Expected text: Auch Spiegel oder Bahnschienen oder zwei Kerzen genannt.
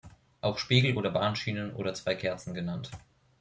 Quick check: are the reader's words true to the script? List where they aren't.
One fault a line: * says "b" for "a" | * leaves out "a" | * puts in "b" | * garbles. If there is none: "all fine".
all fine